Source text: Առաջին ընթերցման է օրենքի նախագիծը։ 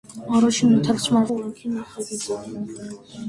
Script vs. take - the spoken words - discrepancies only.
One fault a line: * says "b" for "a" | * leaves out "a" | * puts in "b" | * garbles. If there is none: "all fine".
all fine